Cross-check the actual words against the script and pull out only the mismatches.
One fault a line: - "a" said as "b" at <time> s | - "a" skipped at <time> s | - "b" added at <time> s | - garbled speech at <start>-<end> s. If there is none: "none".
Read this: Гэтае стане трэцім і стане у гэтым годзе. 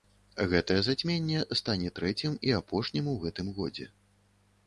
- "зацьменне" added at 0.9 s
- "стане" said as "апошнім" at 2.6 s